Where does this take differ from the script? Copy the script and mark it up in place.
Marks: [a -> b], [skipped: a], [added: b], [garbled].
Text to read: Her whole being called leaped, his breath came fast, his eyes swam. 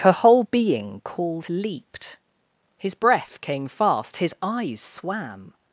Her whole being called leaped, his breath came fast, his eyes swam.